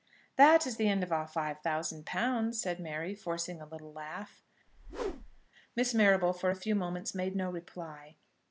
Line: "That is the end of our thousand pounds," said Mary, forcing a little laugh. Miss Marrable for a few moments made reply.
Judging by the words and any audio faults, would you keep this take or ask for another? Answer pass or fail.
fail